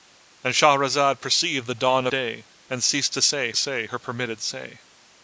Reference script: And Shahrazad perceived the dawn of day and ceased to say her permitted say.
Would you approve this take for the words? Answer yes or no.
no